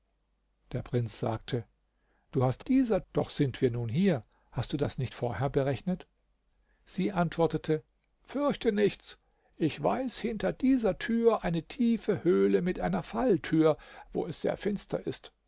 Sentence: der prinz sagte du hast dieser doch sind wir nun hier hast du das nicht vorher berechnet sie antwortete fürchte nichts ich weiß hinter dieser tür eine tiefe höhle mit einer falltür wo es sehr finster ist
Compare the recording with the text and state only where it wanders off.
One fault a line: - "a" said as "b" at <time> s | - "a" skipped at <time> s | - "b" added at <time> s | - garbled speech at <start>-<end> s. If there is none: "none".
none